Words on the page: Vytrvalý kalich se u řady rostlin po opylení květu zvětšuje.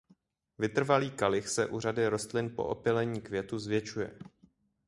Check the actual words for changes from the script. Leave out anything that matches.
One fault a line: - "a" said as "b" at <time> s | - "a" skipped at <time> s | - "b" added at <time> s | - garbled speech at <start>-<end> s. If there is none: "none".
none